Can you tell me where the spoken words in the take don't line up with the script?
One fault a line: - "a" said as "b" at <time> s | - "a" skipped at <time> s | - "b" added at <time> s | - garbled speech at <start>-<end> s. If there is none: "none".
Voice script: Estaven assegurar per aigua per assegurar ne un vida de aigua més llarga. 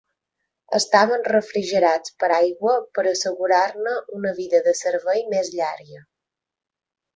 - "assegurar" said as "refrigerats" at 1.3 s
- "un" said as "una" at 4.2 s
- "aigua" said as "servei" at 4.8 s